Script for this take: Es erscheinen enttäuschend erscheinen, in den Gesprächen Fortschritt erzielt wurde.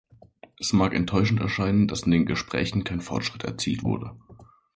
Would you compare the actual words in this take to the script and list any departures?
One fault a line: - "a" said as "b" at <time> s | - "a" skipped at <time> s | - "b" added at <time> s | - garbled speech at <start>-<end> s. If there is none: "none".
- "erscheinen" said as "mag" at 0.7 s
- "dass" added at 1.9 s
- "kein" added at 2.8 s